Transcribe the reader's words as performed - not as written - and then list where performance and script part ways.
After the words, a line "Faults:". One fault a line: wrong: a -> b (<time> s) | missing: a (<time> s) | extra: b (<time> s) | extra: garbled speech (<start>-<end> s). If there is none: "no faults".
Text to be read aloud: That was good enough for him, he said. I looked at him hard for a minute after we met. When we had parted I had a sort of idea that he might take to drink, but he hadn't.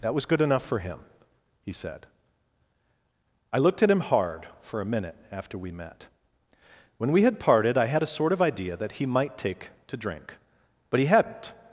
That was good enough for him, he said. I looked at him hard for a minute after we met. When we had parted I had a sort of idea that he might take to drink, but he hadn't.
Faults:
no faults